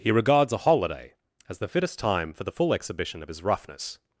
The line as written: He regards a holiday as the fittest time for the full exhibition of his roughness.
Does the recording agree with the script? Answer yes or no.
yes